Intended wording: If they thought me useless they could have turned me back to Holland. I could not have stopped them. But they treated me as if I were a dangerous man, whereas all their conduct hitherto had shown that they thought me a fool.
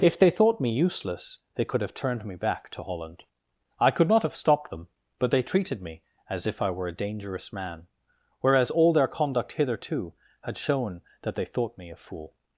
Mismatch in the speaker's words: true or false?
false